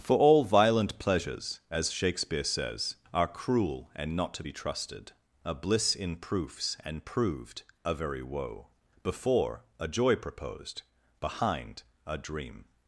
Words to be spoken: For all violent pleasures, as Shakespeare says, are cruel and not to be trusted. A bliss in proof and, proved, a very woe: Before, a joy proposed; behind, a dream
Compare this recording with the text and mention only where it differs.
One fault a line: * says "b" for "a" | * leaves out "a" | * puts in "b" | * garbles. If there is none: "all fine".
* says "proofs" for "proof"